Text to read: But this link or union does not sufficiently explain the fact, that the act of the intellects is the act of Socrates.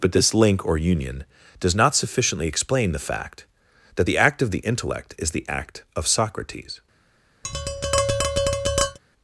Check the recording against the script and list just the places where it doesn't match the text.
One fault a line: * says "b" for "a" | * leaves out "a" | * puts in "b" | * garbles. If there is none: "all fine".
* says "intellect" for "intellects"